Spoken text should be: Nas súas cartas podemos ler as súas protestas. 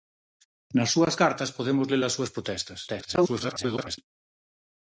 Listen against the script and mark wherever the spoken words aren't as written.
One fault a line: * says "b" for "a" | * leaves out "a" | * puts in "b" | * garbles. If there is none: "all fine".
* garbles